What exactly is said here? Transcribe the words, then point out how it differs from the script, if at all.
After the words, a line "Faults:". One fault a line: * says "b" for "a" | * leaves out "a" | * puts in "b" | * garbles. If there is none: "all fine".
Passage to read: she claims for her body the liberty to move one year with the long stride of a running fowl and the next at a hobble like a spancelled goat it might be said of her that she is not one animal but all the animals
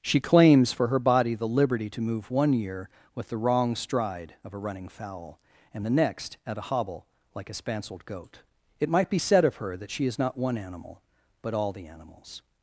she claims for her body the liberty to move one year with the wrong stride of a running fowl and the next at a hobble like a spancelled goat it might be said of her that she is not one animal but all the animals
Faults:
* says "wrong" for "long"